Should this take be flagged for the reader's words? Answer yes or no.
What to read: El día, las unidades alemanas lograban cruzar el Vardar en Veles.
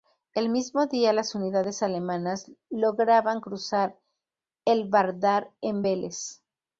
yes